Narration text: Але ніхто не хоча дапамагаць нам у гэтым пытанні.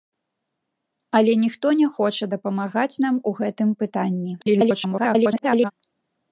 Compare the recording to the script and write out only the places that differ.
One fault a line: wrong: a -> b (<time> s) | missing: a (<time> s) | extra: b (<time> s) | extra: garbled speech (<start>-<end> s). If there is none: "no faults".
extra: garbled speech (4.4-5.7 s)